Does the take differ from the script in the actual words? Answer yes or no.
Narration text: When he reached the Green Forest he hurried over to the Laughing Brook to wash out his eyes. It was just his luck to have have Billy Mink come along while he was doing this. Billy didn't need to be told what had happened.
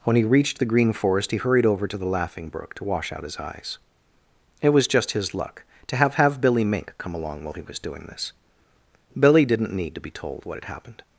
no